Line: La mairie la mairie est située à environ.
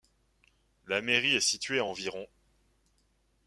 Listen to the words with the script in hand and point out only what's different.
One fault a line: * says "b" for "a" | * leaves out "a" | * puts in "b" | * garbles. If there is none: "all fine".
* leaves out "la mairie"